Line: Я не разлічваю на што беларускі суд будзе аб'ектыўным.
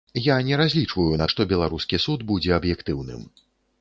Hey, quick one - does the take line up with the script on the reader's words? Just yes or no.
yes